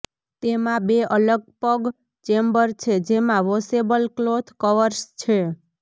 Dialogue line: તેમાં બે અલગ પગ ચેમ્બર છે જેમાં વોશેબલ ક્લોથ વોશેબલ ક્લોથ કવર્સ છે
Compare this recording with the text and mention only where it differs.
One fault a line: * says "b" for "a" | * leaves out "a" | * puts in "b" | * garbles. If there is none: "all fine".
* leaves out "વોશેબલ ક્લોથ"